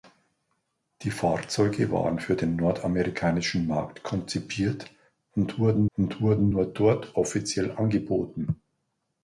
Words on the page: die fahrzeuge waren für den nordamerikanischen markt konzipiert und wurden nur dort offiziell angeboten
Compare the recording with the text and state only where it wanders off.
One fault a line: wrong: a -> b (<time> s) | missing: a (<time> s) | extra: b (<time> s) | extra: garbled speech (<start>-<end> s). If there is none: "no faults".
extra: und wurden (6.0 s)